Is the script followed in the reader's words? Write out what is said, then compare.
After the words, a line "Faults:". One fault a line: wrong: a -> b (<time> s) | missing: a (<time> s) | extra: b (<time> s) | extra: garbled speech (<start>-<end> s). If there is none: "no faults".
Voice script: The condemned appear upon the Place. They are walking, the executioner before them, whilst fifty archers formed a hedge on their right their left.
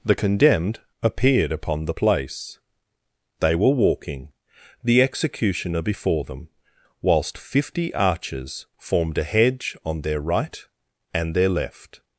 The condemned appeared upon the Place. They were walking, the executioner before them, whilst fifty archers formed a hedge on their right and their left.
Faults:
wrong: appear -> appeared (1.0 s)
wrong: are -> were (3.5 s)
extra: and (11.1 s)